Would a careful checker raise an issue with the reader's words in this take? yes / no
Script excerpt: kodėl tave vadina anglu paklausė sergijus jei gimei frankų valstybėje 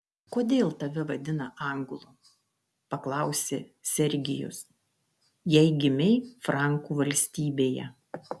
no